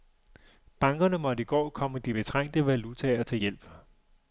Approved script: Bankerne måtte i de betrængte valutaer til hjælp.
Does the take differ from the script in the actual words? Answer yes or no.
yes